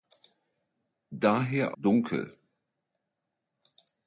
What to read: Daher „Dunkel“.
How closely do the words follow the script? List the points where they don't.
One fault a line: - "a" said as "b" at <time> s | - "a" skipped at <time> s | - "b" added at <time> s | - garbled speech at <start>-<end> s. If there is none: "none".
none